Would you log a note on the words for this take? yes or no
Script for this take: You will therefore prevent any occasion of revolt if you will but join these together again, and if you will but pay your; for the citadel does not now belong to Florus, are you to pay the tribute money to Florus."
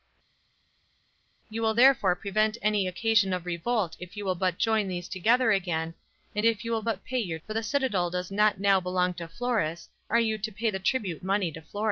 no